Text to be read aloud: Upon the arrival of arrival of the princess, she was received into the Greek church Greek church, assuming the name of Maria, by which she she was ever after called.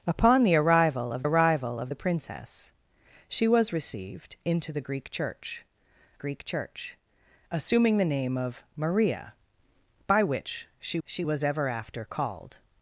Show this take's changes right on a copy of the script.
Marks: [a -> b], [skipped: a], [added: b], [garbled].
Upon the arrival of arrival of the princess, she was received into the Greek church Greek church, assuming the name of Maria, by which she she was ever after called.